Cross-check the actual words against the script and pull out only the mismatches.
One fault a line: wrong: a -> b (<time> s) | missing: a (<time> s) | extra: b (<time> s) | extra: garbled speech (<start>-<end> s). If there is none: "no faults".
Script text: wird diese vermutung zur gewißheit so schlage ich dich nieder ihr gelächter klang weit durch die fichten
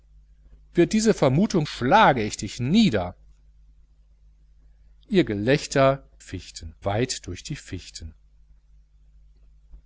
missing: zur gewißheit so (1.7 s)
wrong: klang -> fichten (6.2 s)